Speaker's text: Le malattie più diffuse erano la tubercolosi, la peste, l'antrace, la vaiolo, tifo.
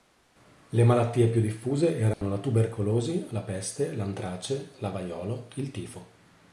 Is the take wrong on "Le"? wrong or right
right